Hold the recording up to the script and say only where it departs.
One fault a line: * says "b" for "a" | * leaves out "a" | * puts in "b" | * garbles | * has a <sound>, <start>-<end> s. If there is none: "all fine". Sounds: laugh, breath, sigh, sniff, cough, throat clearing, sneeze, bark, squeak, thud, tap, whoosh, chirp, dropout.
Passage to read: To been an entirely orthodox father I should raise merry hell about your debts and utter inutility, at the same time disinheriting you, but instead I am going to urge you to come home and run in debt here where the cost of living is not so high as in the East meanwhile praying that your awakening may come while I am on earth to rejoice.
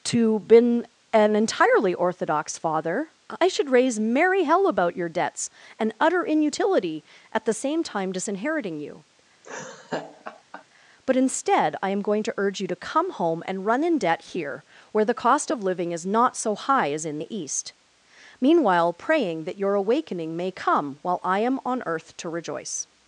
* has a laugh, 9.4-10.6 s